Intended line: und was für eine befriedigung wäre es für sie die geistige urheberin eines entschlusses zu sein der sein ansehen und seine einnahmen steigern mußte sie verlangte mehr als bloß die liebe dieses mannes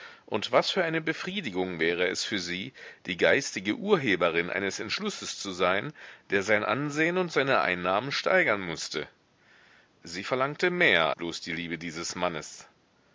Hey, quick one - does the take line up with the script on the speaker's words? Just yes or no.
no